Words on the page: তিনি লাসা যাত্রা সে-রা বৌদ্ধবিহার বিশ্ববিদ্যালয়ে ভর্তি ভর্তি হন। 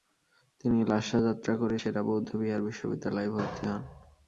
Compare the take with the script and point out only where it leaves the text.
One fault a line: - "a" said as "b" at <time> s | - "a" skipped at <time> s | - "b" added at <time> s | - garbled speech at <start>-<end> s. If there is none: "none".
- "করে" added at 1.6 s
- "ভর্তি" skipped at 3.6 s